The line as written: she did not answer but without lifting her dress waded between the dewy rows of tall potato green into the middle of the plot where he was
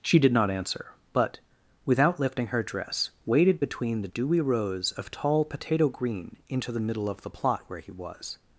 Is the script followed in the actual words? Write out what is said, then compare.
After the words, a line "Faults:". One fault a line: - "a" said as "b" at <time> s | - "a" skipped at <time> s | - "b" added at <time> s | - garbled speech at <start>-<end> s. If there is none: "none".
she did not answer but without lifting her dress waded between the dewy rows of tall potato green into the middle of the plot where he was
Faults:
none